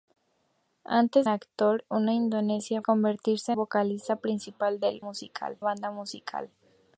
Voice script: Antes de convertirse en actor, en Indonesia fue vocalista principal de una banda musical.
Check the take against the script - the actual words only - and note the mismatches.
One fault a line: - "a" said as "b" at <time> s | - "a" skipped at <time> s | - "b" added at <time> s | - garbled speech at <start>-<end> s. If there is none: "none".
- "de convertirse en" skipped at 1.3 s
- "fue" said as "convertirse" at 2.8 s
- "una" said as "musical" at 5.0 s